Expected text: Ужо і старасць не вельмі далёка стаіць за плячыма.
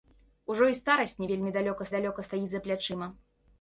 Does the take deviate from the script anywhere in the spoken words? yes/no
yes